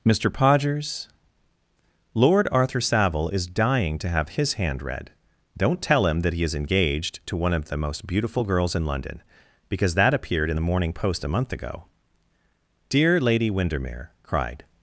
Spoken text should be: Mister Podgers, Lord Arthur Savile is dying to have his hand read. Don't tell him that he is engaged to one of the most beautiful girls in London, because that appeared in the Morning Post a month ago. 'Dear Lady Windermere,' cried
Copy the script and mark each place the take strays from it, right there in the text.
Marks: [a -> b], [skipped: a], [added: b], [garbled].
Mister Podgers, Lord Arthur Savile is dying to have his hand read. Don't tell him that he is engaged to one of the most beautiful girls in London, because that appeared in the Morning Post a month ago. 'Dear Lady Windermere,' cried